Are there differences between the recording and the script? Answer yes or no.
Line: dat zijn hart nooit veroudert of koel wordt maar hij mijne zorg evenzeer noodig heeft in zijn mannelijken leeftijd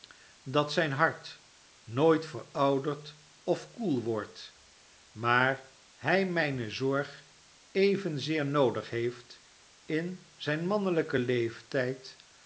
no